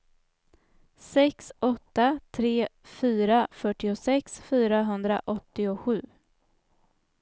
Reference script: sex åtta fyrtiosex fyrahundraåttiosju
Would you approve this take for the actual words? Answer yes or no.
no